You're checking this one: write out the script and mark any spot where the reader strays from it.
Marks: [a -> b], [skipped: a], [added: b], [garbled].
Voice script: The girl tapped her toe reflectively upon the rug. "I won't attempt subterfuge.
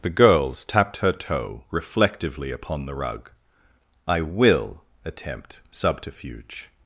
The [girl -> girls] tapped her toe reflectively upon the rug. "I [won't -> will] attempt subterfuge.